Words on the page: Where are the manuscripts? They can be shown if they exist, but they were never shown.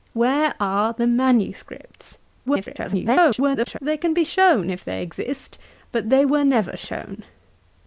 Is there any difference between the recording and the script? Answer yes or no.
yes